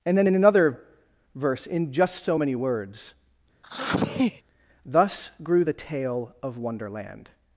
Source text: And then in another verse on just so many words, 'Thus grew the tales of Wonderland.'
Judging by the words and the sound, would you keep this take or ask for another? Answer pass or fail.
fail